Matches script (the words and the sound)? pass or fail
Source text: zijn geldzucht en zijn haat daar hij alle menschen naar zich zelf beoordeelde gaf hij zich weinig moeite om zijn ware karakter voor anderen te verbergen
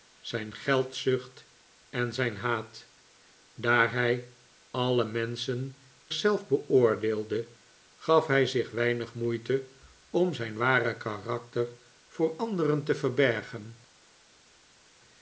fail